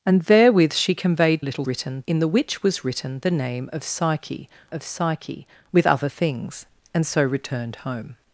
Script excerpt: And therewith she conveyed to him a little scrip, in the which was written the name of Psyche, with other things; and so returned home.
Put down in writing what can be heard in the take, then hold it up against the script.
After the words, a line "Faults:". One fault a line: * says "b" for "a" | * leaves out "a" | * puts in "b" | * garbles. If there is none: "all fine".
And therewith she conveyed a little written, in the which was written the name of Psyche of Psyche, with other things; and so returned home.
Faults:
* leaves out "to him"
* says "written" for "scrip"
* puts in "of Psyche"